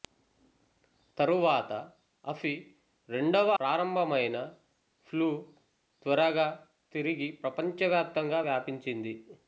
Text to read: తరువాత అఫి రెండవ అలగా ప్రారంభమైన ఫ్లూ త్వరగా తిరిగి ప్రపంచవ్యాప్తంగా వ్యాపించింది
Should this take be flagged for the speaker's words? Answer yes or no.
yes